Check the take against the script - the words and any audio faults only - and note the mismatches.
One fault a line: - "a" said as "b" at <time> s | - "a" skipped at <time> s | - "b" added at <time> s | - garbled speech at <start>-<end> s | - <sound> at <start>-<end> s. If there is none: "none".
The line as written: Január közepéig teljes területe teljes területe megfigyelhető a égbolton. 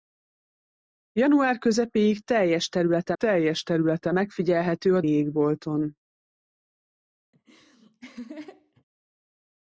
- laugh at 7.3-8.8 s